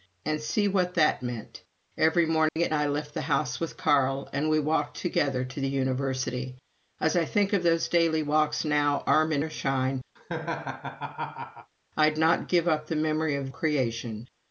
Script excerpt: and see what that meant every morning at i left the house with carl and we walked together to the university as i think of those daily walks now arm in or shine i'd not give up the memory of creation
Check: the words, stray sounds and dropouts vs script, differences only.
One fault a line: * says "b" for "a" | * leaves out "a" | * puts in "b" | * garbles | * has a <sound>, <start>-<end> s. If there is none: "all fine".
* has a dropout, 2.5-2.6 s
* has a laugh, 10.2-11.7 s